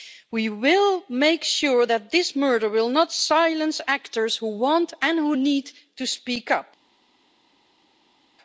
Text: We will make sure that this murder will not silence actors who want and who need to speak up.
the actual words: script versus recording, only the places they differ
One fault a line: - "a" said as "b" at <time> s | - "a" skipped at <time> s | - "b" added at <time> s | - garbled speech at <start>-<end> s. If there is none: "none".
none